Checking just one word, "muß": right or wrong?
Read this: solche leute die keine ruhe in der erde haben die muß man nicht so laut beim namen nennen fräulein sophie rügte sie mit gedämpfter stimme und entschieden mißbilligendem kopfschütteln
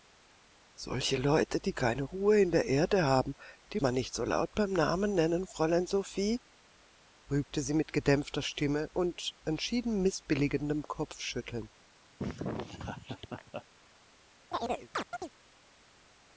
wrong